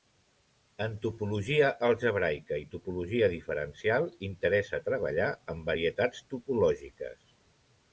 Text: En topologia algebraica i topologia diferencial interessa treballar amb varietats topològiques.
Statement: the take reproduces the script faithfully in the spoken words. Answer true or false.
true